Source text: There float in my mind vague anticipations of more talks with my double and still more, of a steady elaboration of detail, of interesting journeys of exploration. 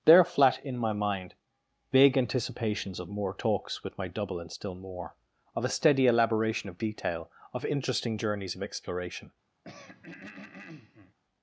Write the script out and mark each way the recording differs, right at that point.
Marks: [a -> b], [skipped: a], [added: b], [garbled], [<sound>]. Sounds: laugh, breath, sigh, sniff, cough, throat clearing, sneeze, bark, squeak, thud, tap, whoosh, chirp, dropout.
There [float -> flat] in my mind vague anticipations of more talks with my double and still more, of a steady elaboration of detail, of interesting journeys of exploration. [throat clearing]